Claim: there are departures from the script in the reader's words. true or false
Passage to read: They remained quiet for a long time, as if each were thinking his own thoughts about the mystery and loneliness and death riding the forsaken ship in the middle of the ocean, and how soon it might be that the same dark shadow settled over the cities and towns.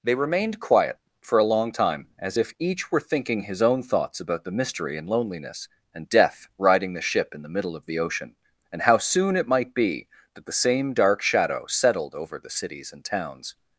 true